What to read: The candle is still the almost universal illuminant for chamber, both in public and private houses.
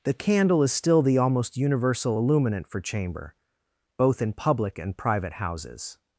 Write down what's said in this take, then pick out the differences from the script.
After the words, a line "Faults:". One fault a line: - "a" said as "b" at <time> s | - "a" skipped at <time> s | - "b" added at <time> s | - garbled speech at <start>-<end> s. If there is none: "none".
The candle is still the almost universal illuminant for chamber, both in public and private houses.
Faults:
none